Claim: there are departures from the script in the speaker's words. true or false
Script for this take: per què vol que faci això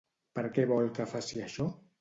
false